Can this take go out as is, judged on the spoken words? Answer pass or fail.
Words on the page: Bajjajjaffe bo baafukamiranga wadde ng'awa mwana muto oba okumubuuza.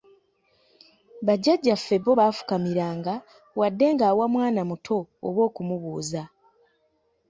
pass